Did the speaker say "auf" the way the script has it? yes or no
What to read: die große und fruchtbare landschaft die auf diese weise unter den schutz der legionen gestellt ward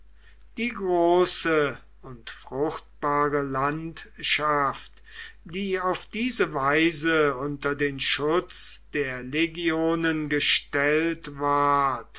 yes